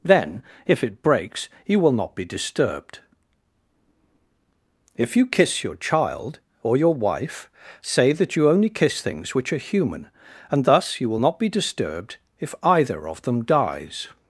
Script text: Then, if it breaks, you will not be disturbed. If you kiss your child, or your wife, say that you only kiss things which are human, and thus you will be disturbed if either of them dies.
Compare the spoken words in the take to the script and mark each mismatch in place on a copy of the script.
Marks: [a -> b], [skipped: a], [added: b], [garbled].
Then, if it breaks, you will not be disturbed. If you kiss your child, or your wife, say that you only kiss things which are human, and thus you will [added: not] be disturbed if either of them dies.